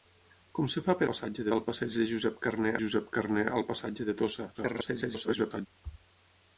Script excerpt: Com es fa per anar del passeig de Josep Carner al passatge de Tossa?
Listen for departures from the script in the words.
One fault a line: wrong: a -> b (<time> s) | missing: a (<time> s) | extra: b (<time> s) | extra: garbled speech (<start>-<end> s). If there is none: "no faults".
wrong: anar -> passatge (1.1 s)
extra: Josep Carner (2.8 s)
extra: garbled speech (4.5-5.7 s)